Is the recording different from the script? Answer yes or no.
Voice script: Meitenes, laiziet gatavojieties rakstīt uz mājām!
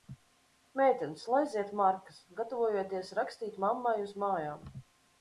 yes